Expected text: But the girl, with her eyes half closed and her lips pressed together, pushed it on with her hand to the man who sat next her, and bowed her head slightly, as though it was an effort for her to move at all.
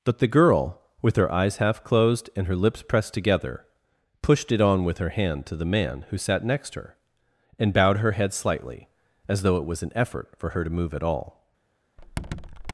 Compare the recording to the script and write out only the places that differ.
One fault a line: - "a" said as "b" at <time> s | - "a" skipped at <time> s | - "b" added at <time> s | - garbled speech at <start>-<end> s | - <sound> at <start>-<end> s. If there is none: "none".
- squeak at 12.0-12.7 s